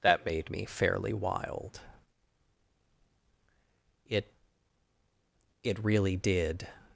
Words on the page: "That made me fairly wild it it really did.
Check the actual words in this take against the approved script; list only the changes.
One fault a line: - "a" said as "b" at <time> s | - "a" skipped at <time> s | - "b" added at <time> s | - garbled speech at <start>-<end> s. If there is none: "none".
none